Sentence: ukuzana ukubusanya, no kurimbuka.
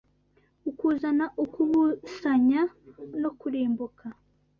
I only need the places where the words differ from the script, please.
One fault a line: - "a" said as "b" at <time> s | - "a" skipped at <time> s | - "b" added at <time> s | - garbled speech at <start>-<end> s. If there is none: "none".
none